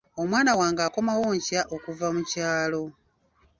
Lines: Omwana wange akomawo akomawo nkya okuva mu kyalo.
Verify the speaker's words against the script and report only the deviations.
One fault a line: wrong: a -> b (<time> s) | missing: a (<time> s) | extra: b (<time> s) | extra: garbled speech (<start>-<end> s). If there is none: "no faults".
missing: akomawo (1.2 s)